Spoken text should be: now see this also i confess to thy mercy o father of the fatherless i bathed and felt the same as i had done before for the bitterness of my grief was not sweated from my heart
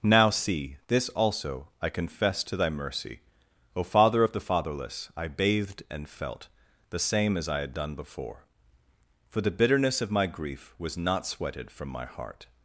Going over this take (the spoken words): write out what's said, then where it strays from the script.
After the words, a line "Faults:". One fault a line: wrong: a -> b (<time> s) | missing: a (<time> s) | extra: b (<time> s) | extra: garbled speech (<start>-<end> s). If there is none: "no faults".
now see this also i confess to thy mercy o father of the fatherless i bathed and felt the same as i had done before for the bitterness of my grief was not sweated from my heart
Faults:
no faults